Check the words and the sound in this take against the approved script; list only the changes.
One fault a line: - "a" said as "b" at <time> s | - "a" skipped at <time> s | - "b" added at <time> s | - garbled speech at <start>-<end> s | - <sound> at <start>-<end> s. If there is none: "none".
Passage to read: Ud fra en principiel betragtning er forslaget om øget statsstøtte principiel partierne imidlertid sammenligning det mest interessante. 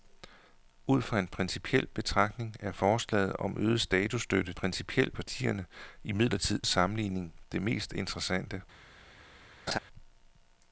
- laugh at 9.7-9.8 s